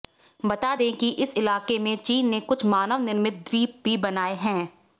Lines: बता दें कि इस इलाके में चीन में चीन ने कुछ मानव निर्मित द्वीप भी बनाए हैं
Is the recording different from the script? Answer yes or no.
yes